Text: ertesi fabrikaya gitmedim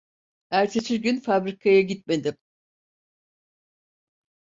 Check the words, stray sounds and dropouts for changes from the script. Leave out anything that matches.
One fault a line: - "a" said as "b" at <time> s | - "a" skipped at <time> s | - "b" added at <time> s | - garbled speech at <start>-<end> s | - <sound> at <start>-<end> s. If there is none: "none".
- "gün" added at 1.0 s